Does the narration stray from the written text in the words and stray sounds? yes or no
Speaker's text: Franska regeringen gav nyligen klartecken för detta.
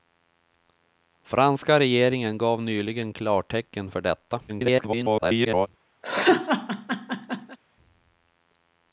yes